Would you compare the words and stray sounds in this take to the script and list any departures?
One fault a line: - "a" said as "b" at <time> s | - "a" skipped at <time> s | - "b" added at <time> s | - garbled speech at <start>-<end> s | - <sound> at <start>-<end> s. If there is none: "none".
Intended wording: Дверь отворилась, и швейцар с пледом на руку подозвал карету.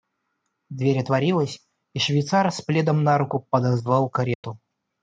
- dropout at 4.3-4.4 s